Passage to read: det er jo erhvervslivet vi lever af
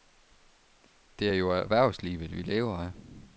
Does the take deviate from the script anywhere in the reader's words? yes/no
no